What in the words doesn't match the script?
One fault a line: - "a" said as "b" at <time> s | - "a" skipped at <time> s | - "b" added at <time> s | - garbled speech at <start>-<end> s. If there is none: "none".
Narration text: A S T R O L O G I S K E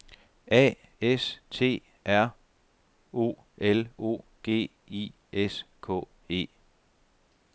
none